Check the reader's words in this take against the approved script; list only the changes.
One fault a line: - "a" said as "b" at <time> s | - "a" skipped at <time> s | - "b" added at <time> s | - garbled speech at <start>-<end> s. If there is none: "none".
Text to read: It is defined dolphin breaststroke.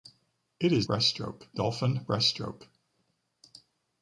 - "defined" said as "breaststroke" at 0.8 s